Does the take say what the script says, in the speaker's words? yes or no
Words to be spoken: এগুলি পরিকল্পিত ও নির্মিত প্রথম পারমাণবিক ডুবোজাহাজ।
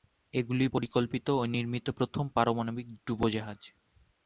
yes